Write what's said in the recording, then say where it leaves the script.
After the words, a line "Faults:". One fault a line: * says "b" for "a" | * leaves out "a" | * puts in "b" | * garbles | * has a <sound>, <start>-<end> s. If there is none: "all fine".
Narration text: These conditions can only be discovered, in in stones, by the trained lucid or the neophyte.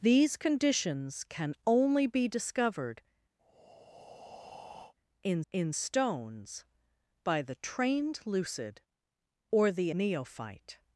These conditions can only be discovered, in in stones, by the trained lucid or the neophyte.
Faults:
* has a breath, 3.4-4.9 s